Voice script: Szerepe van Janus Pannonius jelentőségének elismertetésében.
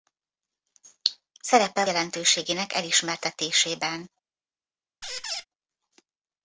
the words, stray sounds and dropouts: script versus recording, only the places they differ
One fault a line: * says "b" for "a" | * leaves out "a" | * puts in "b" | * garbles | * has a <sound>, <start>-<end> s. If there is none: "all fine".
* leaves out "van Janus Pannonius"
* has a squeak, 5.0-5.4 s